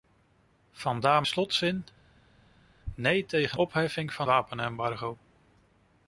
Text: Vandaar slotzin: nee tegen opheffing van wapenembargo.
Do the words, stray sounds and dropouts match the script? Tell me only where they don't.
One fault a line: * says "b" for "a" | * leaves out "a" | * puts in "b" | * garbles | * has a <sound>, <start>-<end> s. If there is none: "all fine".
all fine